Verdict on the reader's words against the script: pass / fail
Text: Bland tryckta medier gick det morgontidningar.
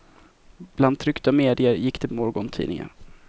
pass